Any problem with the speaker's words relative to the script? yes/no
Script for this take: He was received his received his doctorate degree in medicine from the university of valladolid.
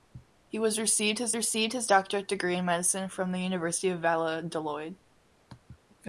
no